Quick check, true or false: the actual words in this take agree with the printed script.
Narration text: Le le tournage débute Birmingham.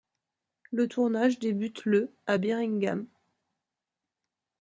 false